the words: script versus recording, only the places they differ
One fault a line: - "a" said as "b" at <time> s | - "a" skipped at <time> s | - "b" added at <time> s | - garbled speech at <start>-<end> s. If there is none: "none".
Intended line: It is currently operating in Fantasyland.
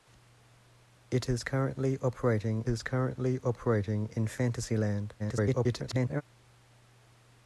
- "is currently operating" added at 2.7 s
- garbled speech at 5.2-6.2 s